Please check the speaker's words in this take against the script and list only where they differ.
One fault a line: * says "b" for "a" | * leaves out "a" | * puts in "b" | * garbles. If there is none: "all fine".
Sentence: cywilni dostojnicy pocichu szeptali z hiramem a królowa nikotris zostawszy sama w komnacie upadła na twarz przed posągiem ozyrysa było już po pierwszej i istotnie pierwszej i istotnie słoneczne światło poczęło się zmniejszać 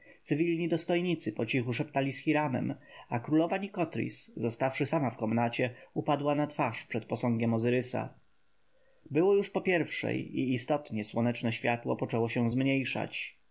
* leaves out "pierwszej i istotnie"